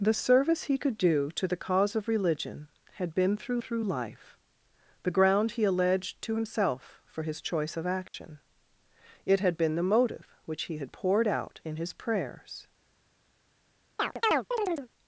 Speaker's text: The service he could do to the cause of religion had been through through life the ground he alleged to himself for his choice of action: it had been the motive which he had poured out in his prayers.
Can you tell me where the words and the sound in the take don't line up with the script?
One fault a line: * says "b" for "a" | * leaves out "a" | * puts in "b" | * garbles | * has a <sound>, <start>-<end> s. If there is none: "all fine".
* has a dropout, 8.1-8.1 s
* has a chirp, 14.0-14.9 s